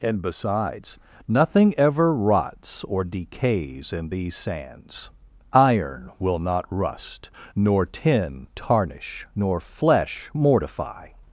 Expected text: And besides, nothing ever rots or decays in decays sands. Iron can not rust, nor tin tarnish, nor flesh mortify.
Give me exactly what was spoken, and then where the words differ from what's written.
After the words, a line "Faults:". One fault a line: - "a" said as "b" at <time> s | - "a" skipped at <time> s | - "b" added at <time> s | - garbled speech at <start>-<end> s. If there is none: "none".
And besides, nothing ever rots or decays in these sands. Iron will not rust, nor tin tarnish, nor flesh mortify.
Faults:
- "decays" said as "these" at 4.1 s
- "can" said as "will" at 6.2 s